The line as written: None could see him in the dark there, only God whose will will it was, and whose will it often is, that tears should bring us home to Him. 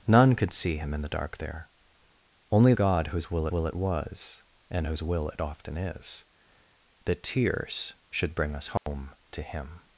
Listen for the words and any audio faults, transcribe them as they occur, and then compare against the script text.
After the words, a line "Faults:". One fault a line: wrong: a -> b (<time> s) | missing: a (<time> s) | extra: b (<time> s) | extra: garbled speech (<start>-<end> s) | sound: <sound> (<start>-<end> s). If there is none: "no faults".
None could see him in the dark there, only God whose will will it was, and whose will it often is, that tears should bring us home to Him.
Faults:
sound: dropout (8.8-8.9 s)